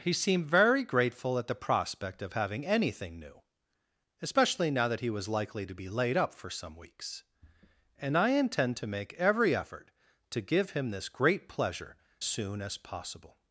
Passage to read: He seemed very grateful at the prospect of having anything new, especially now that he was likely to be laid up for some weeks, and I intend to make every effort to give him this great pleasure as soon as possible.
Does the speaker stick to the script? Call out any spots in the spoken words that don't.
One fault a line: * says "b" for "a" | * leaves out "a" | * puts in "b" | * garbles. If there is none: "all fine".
* leaves out "as"